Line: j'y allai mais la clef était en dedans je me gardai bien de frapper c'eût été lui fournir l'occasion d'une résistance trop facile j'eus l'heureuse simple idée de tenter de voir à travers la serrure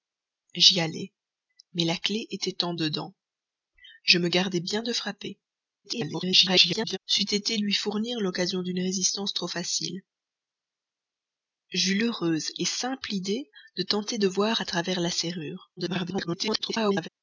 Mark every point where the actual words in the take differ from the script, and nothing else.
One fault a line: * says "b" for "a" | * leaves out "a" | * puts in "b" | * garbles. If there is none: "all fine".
* garbles
* garbles